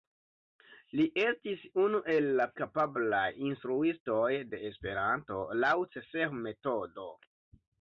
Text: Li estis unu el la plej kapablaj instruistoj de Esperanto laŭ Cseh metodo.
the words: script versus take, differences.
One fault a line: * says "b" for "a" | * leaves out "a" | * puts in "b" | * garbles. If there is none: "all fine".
* leaves out "plej"